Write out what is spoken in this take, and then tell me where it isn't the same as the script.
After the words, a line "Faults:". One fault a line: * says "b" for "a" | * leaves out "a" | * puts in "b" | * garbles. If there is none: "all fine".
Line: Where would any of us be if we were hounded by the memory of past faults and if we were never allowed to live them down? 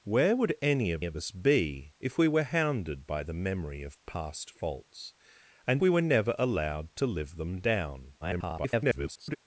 Where would any of of us be if we were hounded by the memory of past faults and we were never allowed to live them down? [garbled]
Faults:
* puts in "of"
* leaves out "if"
* garbles